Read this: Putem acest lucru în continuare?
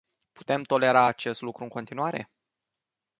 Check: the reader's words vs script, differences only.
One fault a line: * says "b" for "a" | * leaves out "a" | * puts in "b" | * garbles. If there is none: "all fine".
* puts in "tolera"